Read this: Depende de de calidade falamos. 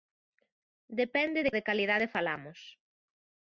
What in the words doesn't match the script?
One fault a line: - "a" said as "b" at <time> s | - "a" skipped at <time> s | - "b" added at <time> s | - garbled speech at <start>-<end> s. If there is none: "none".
none